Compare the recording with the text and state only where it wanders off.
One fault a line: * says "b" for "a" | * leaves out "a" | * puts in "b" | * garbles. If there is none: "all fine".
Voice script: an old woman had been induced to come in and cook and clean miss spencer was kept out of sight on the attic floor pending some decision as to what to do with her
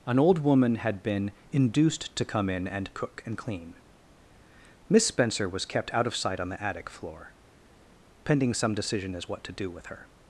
* leaves out "to"